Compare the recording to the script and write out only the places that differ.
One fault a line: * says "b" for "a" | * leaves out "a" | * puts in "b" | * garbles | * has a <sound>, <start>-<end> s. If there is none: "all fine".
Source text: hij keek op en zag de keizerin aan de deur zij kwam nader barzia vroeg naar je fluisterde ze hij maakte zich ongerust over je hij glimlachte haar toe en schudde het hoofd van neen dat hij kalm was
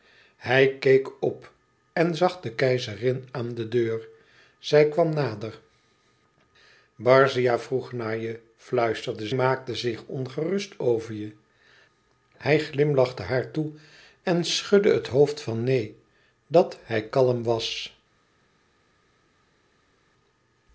* leaves out "ze hij"